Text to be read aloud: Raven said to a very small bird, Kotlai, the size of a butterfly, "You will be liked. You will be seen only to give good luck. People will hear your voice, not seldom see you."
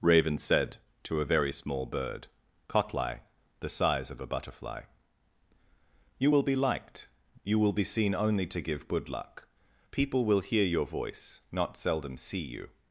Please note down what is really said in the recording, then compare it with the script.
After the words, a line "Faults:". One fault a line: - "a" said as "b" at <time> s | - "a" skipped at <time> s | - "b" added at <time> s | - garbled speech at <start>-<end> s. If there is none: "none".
Raven said to a very small bird, Kotlai, the size of a butterfly, "You will be liked. You will be seen only to give good luck. People will hear your voice, not seldom see you."
Faults:
none